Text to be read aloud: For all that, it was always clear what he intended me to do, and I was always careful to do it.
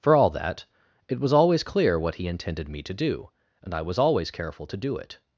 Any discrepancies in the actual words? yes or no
no